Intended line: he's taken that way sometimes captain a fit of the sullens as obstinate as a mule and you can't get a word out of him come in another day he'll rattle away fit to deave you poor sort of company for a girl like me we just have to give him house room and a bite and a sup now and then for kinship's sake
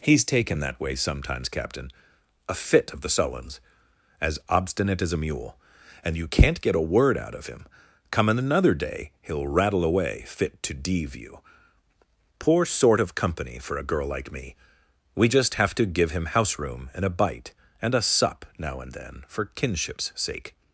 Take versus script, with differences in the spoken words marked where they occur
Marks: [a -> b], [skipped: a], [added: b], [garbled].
he's taken that way sometimes captain a fit of the sullens as obstinate as a mule and you can't get a word out of him come in another day he'll rattle away fit to deave you poor sort of company for a girl like me we just have to give him house room and a bite and a sup now and then for kinship's sake